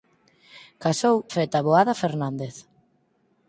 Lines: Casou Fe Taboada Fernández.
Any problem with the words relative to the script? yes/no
no